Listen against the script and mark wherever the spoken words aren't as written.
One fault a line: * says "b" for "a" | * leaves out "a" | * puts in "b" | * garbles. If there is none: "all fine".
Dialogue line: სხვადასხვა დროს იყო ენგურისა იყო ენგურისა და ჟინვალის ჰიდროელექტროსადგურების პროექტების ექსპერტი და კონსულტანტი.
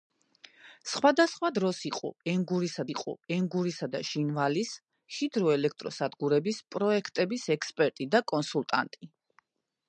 all fine